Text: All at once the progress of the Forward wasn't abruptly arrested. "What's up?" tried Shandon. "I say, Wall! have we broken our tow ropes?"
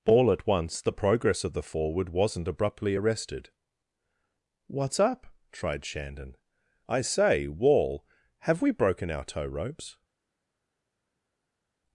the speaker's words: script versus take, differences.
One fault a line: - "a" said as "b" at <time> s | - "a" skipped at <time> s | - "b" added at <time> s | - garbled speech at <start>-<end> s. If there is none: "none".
none